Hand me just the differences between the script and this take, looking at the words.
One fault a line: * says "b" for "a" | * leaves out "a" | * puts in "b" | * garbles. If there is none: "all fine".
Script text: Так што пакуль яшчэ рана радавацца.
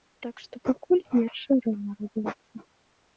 all fine